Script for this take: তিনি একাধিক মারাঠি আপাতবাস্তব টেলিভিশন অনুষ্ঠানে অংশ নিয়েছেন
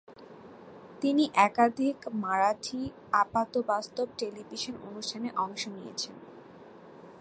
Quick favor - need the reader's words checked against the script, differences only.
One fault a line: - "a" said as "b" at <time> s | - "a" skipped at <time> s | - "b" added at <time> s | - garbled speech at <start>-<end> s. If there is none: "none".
none